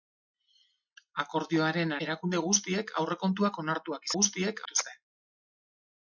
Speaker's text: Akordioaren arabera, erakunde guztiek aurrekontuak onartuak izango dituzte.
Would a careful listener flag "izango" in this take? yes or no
yes